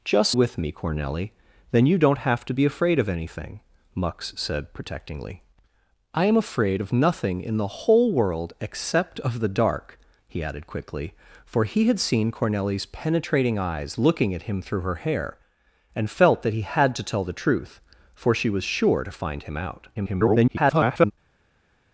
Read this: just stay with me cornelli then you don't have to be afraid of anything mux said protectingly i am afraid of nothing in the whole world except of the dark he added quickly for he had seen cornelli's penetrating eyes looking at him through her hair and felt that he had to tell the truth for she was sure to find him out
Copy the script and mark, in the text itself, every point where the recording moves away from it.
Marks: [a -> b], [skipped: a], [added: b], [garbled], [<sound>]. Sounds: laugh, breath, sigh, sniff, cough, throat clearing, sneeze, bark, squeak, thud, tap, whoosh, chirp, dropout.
just [skipped: stay] with me cornelli then you don't have to be afraid of anything mux said protectingly i am afraid of nothing in the whole world except of the dark he added quickly for he had seen cornelli's penetrating eyes looking at him through her hair and felt that he had to tell the truth for she was sure to find him out [garbled]